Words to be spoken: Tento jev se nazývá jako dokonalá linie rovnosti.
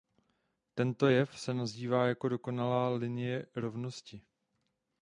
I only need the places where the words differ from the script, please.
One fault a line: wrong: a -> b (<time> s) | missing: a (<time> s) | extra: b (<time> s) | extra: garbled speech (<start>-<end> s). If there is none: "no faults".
no faults